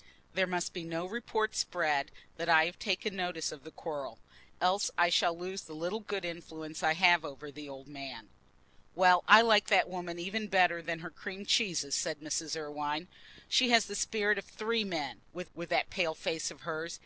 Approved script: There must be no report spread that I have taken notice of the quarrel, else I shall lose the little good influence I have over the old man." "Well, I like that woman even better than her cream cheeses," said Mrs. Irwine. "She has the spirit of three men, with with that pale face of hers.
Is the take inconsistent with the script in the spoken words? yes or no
no